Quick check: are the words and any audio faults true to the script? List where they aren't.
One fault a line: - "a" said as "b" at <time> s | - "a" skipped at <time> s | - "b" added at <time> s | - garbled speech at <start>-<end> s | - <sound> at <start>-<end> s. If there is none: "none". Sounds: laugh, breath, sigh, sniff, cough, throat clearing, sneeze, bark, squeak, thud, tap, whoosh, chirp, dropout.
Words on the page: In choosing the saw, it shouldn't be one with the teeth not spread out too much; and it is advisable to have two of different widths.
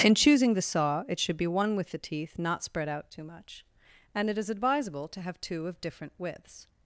- "shouldn't" said as "should" at 1.2 s